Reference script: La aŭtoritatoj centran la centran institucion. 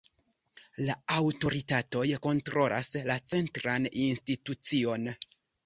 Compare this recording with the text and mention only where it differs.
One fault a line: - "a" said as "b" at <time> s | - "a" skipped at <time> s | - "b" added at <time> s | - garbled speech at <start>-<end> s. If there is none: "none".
- "centran" said as "kontrolas" at 2.3 s